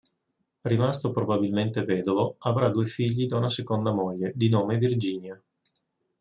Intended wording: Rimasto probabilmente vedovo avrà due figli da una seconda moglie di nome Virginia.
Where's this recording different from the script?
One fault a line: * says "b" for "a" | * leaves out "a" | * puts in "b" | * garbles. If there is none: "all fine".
all fine